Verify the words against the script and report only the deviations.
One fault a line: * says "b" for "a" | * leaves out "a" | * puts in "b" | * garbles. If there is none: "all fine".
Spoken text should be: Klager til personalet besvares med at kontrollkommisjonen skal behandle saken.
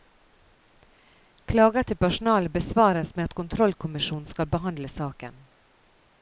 all fine